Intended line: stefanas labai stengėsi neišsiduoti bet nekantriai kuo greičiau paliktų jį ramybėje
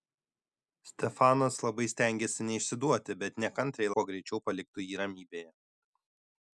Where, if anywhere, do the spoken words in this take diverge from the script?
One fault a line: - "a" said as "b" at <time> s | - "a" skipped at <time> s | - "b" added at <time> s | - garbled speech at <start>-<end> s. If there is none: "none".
none